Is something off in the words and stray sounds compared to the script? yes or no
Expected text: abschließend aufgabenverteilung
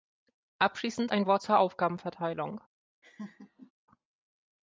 yes